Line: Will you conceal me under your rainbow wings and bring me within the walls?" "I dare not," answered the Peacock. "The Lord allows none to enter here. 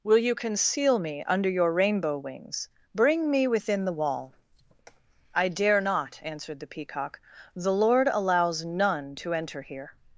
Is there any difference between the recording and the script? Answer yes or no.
yes